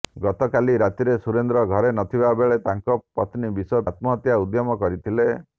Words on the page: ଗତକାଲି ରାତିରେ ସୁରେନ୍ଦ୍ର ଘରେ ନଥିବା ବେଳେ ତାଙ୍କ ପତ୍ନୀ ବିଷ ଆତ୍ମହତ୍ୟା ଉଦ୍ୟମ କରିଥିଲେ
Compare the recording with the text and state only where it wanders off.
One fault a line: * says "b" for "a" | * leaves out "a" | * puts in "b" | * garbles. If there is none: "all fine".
all fine